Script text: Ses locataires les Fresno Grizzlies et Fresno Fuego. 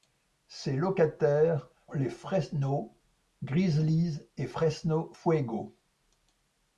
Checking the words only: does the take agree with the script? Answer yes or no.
yes